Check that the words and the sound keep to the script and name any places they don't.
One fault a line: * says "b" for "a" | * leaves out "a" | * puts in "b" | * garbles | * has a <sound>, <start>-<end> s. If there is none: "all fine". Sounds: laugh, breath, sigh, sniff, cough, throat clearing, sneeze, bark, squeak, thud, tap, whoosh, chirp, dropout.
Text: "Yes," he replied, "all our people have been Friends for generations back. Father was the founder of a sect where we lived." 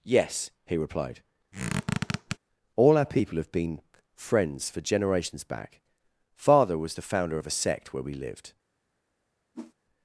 * has a squeak, 1.5-2.4 s
* has a whoosh, 9.5-9.7 s